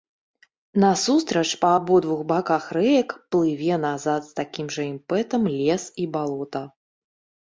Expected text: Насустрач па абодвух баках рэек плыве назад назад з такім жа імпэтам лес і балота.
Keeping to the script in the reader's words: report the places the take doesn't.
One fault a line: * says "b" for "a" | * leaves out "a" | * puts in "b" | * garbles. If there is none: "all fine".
* leaves out "назад"